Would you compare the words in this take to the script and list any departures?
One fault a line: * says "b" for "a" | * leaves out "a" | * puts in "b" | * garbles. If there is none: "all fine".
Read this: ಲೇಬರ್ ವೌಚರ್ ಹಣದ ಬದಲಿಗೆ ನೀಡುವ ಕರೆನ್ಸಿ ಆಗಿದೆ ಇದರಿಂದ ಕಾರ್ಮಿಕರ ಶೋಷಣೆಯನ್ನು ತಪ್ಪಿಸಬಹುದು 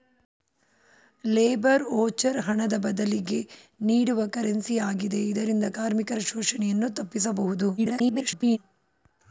* garbles